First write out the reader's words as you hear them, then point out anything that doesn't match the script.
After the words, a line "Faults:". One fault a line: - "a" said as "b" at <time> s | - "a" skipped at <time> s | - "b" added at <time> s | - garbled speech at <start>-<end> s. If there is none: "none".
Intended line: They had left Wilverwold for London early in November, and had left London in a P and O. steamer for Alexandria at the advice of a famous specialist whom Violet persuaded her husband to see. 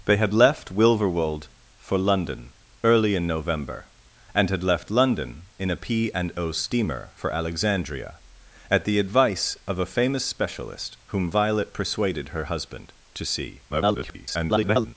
They had left Wilverwold for London early in November, and had left London in a P and O. steamer for Alexandria at the advice of a famous specialist whom Violet persuaded her husband to see. [garbled]
Faults:
- garbled speech at 13.7-15.0 s